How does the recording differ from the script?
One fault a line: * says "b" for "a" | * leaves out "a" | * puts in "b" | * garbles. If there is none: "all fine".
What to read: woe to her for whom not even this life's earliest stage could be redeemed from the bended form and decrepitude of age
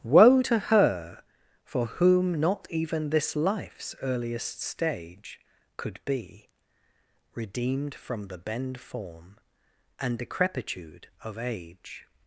* says "bend" for "bended"